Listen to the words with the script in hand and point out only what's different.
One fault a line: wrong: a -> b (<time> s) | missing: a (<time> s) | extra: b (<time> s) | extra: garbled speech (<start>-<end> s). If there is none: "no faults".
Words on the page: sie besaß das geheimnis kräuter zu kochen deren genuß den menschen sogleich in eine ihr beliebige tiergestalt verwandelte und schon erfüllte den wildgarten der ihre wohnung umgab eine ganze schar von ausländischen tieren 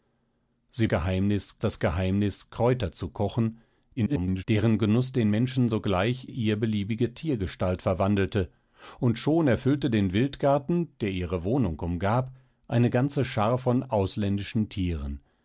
wrong: besaß -> geheimnis (0.9 s)
extra: garbled speech (4.0-4.4 s)
missing: in eine (6.3 s)